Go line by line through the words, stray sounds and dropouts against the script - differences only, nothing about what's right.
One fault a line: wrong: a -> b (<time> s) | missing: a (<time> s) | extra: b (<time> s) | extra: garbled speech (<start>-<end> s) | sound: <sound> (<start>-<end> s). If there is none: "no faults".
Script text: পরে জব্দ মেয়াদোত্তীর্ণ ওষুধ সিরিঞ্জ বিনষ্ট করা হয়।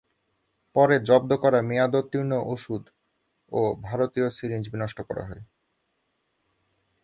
extra: করা (1.3 s)
extra: ও ভারতীয় (3.5 s)